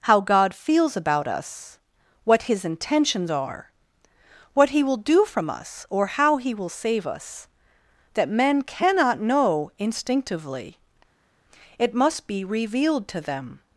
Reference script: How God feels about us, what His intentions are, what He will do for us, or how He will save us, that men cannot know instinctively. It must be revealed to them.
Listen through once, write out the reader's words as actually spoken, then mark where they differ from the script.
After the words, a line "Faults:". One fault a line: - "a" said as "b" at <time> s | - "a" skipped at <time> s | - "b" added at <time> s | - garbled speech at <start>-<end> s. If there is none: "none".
How God feels about us, what His intentions are, what He will do from us, or how He will save us, that men cannot know instinctively. It must be revealed to them.
Faults:
- "for" said as "from" at 5.2 s